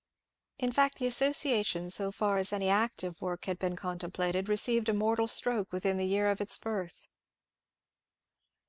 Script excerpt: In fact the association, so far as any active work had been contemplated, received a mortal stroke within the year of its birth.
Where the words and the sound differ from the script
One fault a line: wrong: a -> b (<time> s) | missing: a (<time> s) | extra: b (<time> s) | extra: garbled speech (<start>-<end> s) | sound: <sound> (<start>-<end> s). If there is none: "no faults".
no faults